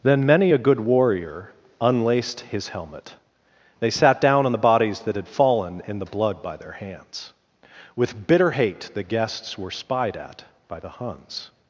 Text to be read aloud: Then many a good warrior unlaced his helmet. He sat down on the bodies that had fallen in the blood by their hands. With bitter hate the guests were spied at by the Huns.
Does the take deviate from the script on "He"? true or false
true